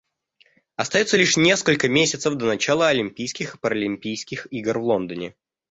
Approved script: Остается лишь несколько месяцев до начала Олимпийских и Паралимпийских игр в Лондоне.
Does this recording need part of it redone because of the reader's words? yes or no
no